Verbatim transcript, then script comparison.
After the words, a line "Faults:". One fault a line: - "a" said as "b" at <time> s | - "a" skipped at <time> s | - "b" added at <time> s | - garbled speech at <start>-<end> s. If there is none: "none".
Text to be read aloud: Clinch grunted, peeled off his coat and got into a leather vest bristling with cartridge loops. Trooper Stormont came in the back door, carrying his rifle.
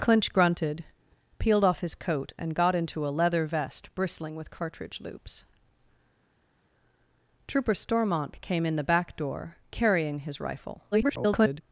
Clinch grunted, peeled off his coat and got into a leather vest bristling with cartridge loops. Trooper Stormont came in the back door, carrying his rifle. [garbled]
Faults:
- garbled speech at 10.9-11.6 s